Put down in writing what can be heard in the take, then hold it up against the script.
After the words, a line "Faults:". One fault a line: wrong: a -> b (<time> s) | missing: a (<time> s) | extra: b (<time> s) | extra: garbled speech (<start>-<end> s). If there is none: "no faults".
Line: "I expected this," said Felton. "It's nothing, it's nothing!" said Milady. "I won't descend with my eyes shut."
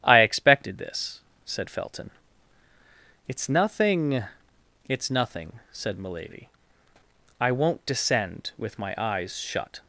"I expected this," said Felton. "It's nothing, it's nothing!" said Milady. "I won't descend with my eyes shut."
Faults:
no faults